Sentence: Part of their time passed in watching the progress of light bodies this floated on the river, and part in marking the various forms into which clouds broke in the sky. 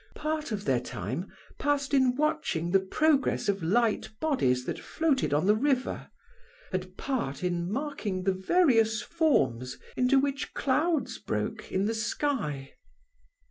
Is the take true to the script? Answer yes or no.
no